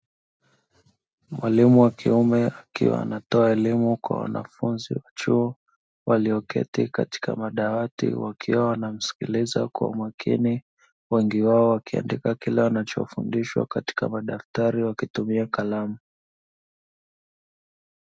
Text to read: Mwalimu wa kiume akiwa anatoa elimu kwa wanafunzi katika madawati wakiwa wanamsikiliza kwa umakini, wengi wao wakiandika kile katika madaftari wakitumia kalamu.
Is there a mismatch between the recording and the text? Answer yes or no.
yes